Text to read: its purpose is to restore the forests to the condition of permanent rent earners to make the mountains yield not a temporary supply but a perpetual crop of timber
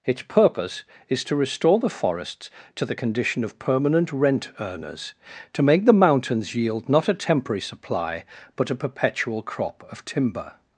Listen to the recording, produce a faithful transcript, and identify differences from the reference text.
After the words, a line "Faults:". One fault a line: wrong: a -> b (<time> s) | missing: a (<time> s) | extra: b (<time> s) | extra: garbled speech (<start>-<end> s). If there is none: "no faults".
its purpose is to restore the forests to the condition of permanent rent earners to make the mountains yield not a temporary supply but a perpetual crop of timber
Faults:
no faults